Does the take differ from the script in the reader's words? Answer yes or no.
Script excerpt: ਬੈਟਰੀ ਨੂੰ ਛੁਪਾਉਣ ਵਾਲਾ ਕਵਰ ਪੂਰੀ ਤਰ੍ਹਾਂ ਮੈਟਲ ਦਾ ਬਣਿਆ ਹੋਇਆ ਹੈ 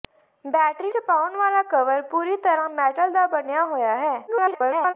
yes